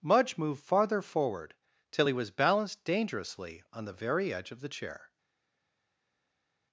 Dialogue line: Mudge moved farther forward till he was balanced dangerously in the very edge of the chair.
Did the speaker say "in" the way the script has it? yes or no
no